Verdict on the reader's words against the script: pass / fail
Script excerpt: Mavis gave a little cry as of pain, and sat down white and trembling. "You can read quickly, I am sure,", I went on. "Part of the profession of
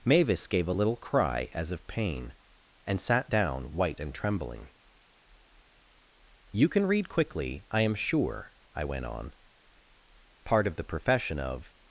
pass